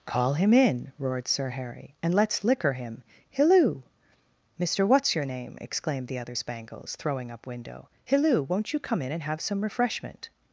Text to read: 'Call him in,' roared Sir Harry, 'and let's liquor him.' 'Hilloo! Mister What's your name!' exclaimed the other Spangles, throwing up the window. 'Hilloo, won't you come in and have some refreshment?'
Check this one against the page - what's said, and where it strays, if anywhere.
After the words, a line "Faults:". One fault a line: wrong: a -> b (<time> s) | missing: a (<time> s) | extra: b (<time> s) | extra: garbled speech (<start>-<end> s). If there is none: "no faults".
'Call him in,' roared Sir Harry, 'and let's liquor him.' 'Hilloo! Mister What's your name!' exclaimed the other Spangles, throwing up window. 'Hilloo, won't you come in and have some refreshment?'
Faults:
missing: the (7.5 s)